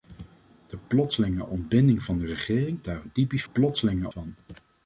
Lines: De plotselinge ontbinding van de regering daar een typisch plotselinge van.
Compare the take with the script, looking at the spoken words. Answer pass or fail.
pass